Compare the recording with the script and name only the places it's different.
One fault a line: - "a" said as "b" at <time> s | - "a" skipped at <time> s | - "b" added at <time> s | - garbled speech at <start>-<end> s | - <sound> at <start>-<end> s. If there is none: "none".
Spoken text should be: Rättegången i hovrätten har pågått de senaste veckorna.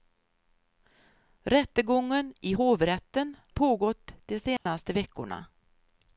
- "har" skipped at 3.4 s
- dropout at 4.6-4.7 s